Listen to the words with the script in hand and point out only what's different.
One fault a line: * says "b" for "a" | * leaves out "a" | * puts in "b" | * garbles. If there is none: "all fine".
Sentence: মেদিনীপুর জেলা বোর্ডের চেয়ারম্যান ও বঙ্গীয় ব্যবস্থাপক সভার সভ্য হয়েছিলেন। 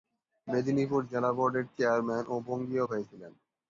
* leaves out "ব্যবস্থাপক সভার সভ্য"